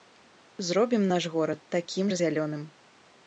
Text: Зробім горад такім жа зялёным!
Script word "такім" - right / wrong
right